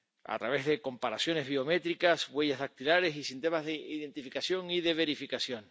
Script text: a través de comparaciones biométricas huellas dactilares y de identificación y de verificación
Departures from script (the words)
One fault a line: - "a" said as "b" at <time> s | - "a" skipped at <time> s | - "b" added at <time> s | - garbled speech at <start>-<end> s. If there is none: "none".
- "sistemas" added at 3.2 s